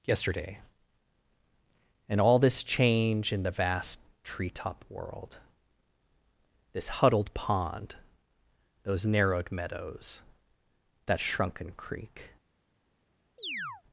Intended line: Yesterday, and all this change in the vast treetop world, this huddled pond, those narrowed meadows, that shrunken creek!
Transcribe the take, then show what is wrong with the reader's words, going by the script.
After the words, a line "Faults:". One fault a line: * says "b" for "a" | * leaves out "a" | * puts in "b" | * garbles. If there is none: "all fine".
Yesterday, and all this change in the vast treetop world, this huddled pond, those narrowed meadows, that shrunken creek!
Faults:
all fine